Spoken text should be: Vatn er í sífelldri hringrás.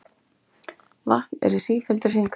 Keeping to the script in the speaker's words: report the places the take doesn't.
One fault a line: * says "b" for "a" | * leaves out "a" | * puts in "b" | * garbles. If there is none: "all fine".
all fine